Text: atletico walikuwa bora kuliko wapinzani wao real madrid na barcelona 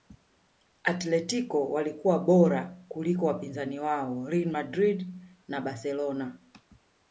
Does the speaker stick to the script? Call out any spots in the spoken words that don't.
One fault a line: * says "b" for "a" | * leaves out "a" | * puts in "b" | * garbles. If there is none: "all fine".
all fine